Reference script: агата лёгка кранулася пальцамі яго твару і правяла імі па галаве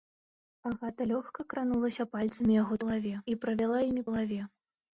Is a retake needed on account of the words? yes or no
yes